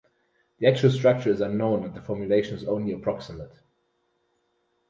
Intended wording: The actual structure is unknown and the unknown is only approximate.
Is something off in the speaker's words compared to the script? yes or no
yes